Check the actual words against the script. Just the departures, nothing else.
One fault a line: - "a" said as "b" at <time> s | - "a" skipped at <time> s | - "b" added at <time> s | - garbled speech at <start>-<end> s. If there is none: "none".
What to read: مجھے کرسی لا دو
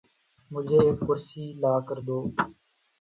- "ایک" added at 0.8 s
- "کر" added at 1.9 s